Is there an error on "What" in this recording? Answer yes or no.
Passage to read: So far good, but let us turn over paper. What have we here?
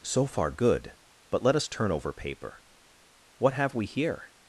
no